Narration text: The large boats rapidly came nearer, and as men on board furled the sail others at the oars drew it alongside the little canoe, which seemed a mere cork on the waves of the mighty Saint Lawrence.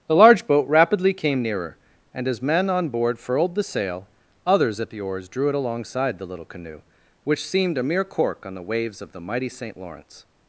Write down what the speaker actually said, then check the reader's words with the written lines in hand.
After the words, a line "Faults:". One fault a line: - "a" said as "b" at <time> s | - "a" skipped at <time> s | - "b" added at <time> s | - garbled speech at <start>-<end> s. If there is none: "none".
The large boat rapidly came nearer, and as men on board furled the sail others at the oars drew it alongside the little canoe, which seemed a mere cork on the waves of the mighty Saint Lawrence.
Faults:
- "boats" said as "boat" at 0.5 s